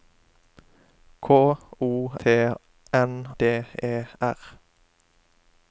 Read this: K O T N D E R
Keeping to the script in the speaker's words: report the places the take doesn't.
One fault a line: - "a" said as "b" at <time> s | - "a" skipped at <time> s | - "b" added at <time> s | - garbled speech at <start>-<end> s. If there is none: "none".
none